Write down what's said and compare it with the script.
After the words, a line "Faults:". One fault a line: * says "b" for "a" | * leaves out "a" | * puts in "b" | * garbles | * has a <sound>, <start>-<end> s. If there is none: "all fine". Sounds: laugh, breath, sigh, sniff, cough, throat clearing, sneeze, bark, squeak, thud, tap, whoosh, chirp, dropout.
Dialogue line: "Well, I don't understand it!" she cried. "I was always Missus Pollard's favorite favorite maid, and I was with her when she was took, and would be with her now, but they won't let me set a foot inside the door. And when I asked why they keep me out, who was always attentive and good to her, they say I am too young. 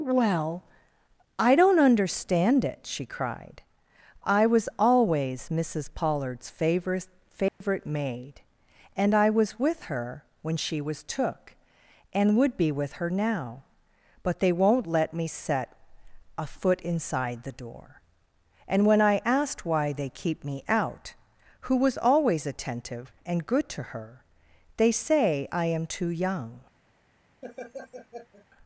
"Well, I don't understand it!" she cried. "I was always Missus Pollard's favorite favorite maid, and I was with her when she was took, and would be with her now, but they won't let me set a foot inside the door. And when I asked why they keep me out, who was always attentive and good to her, they say I am too young.
Faults:
* has a dropout, 7.5-7.6 s
* has a laugh, 27.4-28.5 s